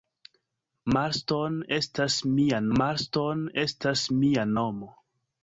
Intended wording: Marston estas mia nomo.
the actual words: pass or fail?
fail